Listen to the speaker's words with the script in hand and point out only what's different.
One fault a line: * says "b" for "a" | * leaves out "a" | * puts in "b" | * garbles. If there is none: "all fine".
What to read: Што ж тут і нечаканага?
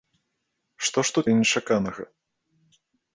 all fine